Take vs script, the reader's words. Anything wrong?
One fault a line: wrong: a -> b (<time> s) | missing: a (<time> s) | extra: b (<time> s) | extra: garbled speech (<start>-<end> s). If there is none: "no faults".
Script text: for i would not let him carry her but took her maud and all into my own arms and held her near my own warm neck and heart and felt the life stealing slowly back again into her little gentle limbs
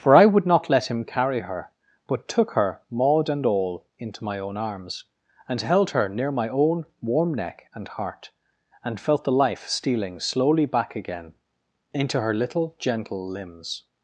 no faults